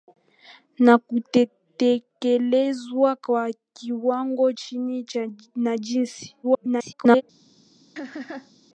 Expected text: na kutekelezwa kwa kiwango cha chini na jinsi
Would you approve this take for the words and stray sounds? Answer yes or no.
no